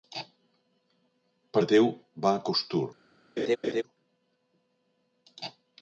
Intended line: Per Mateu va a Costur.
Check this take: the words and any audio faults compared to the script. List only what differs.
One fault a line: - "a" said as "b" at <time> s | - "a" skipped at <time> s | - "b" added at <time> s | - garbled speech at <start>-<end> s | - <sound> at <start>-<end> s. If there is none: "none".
- laugh at 3.4-3.8 s